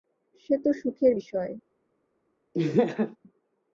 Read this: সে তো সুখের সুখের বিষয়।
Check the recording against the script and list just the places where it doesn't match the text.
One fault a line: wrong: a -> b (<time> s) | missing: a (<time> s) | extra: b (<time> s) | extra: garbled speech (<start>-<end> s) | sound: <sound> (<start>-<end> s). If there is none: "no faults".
missing: সুখের (1.1 s)
sound: laugh (2.5-3.2 s)